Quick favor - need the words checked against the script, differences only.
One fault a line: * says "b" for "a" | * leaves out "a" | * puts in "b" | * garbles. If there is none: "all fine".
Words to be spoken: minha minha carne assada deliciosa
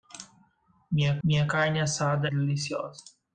all fine